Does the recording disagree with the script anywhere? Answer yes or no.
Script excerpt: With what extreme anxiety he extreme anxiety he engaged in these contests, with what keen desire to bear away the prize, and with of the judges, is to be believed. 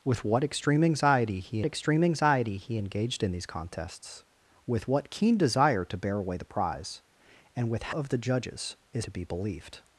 no